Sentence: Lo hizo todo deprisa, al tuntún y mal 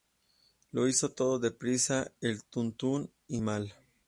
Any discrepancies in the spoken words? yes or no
no